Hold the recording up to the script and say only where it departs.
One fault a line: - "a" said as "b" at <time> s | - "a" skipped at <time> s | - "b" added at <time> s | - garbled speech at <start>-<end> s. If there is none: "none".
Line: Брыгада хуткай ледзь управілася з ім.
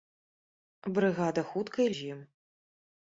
- "ледзь управілася" skipped at 1.9 s